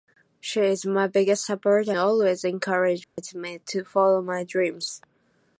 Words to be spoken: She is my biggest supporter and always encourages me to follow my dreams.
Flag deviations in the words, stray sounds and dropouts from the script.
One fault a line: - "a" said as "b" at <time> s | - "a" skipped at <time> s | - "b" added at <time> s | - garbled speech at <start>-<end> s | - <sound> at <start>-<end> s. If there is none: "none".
- "and" skipped at 1.9 s
- dropout at 3.0-3.2 s